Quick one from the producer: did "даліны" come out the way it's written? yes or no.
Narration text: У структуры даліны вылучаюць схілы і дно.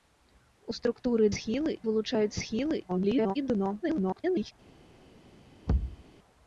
no